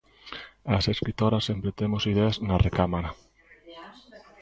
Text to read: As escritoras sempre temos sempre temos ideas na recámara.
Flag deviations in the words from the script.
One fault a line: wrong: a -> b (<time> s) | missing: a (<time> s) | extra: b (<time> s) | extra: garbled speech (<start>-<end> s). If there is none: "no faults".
missing: sempre temos (2.0 s)